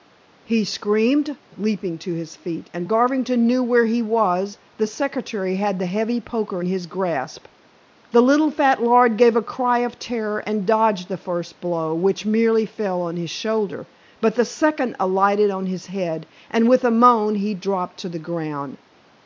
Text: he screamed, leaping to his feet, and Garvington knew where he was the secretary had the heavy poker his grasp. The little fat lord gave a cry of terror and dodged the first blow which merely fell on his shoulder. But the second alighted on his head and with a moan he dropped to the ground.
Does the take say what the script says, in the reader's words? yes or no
yes